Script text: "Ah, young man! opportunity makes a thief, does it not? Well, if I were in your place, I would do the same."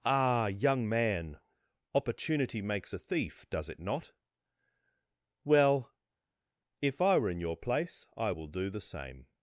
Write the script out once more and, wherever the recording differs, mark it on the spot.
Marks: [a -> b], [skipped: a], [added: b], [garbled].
"Ah, young man! opportunity makes a thief, does it not? Well, if I were in your place, I [would -> will] do the same."